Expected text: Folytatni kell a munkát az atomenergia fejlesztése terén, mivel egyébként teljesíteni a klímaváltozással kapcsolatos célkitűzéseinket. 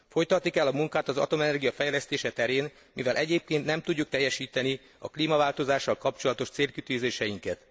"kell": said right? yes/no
yes